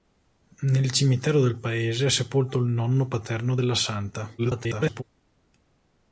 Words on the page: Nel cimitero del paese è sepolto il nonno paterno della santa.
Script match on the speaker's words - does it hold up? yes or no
no